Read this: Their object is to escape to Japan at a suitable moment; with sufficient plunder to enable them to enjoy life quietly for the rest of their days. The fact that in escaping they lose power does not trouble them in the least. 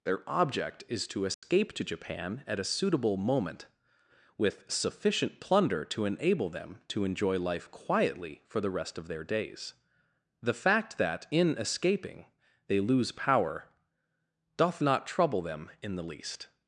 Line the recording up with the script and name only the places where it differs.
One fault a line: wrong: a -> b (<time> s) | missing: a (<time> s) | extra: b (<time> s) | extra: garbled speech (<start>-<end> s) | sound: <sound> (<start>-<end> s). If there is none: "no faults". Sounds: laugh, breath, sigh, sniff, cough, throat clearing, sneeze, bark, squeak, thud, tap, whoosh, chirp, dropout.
sound: dropout (1.3-1.4 s)
wrong: does -> doth (14.5 s)